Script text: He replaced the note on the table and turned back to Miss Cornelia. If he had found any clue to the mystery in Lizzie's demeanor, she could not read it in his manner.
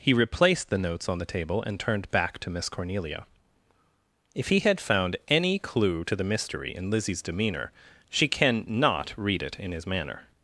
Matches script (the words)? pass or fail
fail